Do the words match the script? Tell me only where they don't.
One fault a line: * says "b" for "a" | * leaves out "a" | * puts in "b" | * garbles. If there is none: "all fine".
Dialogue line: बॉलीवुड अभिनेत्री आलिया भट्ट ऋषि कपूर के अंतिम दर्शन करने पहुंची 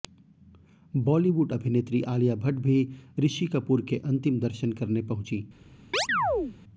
* puts in "भी"